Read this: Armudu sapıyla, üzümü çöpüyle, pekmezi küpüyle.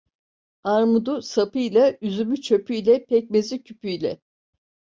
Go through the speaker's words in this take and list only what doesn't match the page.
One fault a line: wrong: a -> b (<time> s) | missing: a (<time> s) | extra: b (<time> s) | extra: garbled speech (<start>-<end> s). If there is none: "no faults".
no faults